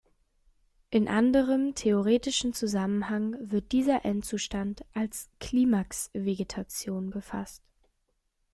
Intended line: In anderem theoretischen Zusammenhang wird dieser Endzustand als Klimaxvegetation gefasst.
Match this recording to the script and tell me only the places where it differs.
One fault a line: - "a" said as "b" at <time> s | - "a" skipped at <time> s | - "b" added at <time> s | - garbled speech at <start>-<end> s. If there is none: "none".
none